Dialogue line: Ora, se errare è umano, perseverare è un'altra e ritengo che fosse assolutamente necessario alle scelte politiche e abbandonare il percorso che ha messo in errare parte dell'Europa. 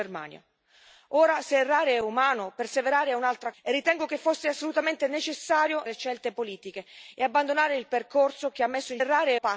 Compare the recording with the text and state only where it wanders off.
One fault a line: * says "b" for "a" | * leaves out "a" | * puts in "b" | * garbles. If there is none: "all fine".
all fine